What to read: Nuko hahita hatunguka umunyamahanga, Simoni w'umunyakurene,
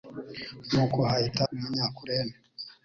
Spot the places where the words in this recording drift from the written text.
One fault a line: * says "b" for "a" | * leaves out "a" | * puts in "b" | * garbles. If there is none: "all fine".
* leaves out "hatunguka umunyamahanga Simoni"